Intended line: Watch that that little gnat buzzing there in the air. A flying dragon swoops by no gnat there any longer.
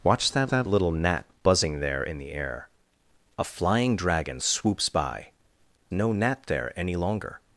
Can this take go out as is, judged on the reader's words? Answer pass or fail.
pass